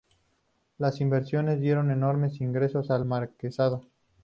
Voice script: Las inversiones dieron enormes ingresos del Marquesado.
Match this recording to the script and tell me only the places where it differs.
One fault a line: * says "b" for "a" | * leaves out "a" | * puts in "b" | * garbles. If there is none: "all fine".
* says "al" for "del"